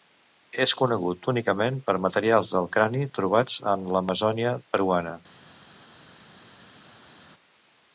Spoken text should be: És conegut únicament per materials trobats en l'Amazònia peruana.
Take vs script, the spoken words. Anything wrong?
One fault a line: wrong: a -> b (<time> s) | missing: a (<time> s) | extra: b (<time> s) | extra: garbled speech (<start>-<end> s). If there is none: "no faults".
extra: del crani (2.6 s)